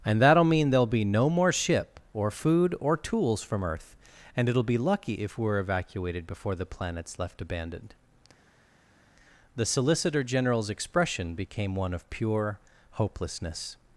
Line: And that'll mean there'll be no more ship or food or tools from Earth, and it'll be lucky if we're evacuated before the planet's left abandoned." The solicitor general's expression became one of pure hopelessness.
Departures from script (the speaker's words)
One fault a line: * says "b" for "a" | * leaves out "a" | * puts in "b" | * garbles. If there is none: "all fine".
all fine